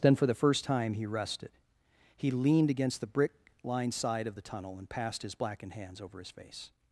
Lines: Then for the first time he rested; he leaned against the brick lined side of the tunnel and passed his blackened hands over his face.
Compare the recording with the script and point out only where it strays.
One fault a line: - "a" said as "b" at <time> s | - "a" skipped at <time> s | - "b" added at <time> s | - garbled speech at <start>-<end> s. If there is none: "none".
none